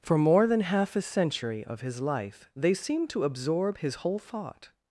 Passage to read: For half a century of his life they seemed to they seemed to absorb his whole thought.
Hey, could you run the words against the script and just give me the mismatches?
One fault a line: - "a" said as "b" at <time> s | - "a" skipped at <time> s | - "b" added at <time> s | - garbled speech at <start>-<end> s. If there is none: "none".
- "more than" added at 0.2 s
- "they seemed to" skipped at 3.2 s